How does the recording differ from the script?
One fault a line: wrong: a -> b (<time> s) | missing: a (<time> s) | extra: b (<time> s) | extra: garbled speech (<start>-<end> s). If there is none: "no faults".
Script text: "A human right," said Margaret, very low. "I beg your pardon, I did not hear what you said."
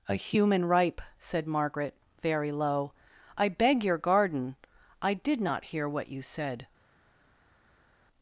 wrong: right -> ripe (0.7 s)
wrong: pardon -> garden (4.0 s)